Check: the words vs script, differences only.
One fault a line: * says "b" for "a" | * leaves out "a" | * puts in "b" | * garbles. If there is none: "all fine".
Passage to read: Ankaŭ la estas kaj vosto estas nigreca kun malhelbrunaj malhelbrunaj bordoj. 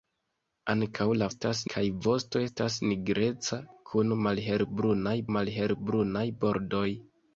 all fine